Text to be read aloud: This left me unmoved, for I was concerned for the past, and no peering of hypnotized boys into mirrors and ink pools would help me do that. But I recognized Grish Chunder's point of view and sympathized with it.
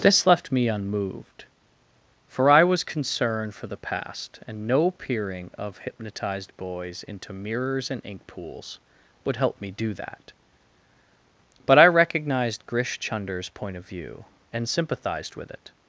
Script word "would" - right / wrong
right